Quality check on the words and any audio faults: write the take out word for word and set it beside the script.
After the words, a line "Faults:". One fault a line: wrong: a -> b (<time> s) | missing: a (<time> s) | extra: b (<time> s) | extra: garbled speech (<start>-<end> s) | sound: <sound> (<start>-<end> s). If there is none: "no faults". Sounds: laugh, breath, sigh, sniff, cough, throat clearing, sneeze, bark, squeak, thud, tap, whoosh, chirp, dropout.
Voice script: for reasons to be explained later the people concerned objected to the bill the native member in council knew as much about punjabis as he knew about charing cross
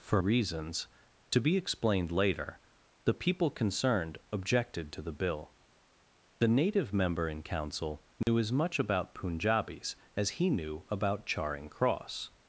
for reasons to be explained later the people concerned objected to the bill the native member in council knew as much about punjabis as he knew about charing cross
Faults:
sound: dropout (8.2-8.3 s)